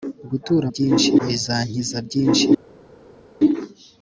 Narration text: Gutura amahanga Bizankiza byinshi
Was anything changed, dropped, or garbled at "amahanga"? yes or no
yes